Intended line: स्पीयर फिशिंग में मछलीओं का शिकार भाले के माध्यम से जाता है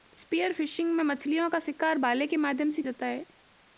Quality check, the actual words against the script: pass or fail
pass